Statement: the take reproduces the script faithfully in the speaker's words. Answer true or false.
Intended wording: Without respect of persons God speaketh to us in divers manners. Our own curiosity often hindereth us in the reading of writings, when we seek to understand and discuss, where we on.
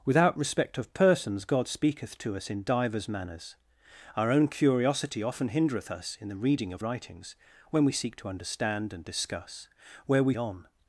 true